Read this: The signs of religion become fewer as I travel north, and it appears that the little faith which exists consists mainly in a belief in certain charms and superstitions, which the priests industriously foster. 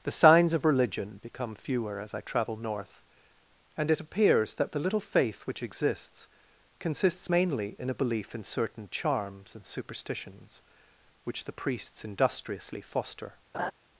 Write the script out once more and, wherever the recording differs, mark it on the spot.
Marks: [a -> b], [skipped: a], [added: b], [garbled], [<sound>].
The signs of religion become fewer as I travel north, and it appears that the little faith which exists consists mainly in a belief in certain charms and superstitions, which the priests industriously foster. [laugh]